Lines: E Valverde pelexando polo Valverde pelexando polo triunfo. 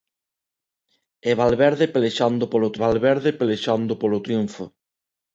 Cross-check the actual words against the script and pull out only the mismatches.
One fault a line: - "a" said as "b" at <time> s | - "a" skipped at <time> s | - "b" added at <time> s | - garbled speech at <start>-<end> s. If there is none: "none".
none